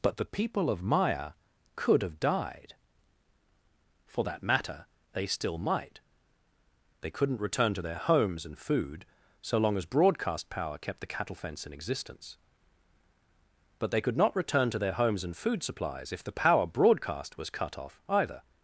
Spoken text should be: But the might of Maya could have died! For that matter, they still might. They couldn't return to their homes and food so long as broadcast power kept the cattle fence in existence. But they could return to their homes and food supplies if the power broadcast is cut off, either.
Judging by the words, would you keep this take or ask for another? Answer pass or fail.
fail